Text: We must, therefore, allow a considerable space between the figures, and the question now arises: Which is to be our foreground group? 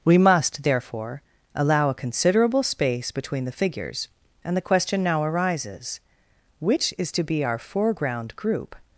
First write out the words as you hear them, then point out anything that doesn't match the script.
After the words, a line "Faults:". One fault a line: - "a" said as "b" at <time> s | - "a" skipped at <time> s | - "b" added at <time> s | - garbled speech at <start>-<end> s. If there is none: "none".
We must, therefore, allow a considerable space between the figures, and the question now arises: Which is to be our foreground group?
Faults:
none